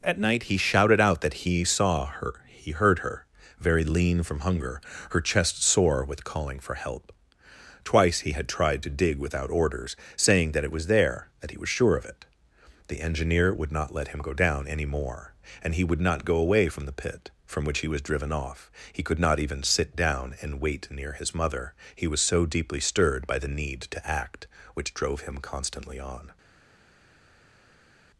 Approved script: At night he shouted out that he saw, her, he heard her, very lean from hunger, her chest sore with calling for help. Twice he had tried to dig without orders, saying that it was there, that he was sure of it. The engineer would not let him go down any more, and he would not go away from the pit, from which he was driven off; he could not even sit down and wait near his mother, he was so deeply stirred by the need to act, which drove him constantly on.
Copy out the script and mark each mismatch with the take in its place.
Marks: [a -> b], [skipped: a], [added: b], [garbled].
At night he shouted out that he saw, her, he heard her, very lean from hunger, her chest sore with calling for help. Twice he had tried to dig without orders, saying that it was there, that he was sure of it. The engineer would not let him go down any more, and he would not go away from the pit, from which he was driven off; he could not even sit down and wait near his mother, he was so deeply stirred by the need to act, which drove him constantly on.